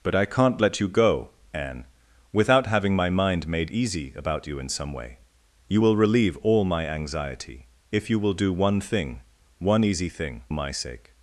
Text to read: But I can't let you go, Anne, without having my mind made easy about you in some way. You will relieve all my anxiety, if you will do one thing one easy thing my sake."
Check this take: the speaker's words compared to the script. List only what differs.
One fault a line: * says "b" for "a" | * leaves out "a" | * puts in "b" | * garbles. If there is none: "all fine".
all fine